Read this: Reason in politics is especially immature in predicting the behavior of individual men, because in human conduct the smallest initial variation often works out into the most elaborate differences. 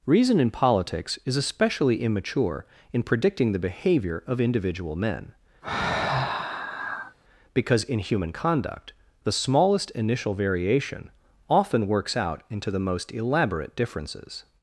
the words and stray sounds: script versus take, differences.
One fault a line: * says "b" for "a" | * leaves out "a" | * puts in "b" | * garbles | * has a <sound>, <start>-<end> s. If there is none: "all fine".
* has a sigh, 5.6-7.2 s